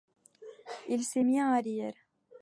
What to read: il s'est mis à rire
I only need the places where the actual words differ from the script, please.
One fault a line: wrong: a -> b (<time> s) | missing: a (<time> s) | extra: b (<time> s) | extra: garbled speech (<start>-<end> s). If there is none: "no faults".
no faults